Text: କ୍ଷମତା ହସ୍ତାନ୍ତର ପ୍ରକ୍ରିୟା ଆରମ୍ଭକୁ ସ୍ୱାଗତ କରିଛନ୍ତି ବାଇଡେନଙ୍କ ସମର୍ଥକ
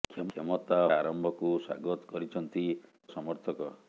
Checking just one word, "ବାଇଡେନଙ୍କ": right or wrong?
wrong